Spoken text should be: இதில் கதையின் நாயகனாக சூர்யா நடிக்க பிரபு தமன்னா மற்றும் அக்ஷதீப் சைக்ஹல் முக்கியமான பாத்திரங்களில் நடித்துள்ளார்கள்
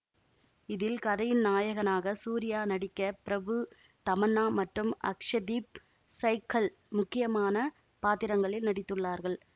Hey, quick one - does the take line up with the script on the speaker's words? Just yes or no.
yes